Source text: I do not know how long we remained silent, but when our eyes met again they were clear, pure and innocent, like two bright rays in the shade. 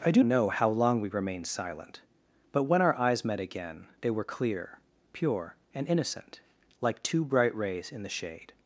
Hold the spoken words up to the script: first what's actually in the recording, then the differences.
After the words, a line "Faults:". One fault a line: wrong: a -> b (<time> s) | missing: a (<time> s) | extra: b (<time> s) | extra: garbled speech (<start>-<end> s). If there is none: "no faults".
I do know how long we remained silent, but when our eyes met again they were clear, pure and innocent, like two bright rays in the shade.
Faults:
missing: not (0.2 s)